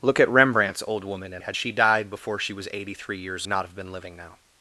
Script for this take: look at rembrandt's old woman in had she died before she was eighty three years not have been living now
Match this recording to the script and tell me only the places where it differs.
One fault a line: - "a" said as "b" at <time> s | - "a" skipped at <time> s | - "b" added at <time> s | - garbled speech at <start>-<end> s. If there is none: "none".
none